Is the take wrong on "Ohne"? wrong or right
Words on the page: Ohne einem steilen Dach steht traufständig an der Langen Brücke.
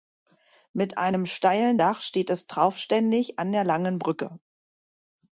wrong